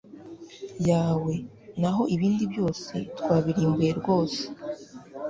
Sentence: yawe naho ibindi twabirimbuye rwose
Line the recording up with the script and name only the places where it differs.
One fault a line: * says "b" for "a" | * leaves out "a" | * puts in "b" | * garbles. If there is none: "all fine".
* puts in "byose"